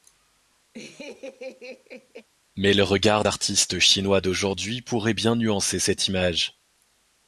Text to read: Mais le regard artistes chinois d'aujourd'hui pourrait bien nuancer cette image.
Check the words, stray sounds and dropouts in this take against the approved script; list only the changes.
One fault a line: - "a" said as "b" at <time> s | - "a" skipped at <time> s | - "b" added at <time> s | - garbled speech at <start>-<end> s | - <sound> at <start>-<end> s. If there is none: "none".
- laugh at 0.7-2.3 s